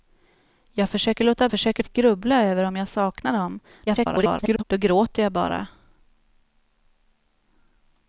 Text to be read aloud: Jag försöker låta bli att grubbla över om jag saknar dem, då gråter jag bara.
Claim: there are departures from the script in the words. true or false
true